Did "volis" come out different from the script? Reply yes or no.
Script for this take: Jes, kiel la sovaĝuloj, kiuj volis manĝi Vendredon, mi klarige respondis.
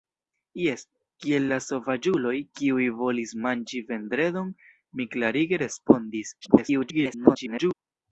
no